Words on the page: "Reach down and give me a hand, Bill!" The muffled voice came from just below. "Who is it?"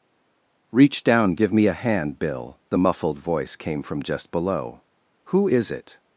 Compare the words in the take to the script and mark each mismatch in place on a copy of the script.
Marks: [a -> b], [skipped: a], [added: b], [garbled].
"Reach down [skipped: and] give me a hand, Bill!" The muffled voice came from just below. "Who is it?"